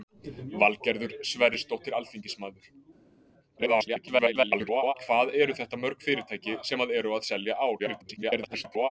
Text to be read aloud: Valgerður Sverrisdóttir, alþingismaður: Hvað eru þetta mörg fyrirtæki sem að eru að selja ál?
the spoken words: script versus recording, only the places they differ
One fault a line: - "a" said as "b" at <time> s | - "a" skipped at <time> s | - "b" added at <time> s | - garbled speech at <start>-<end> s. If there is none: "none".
- garbled speech at 3.6-4.9 s
- garbled speech at 7.8-8.9 s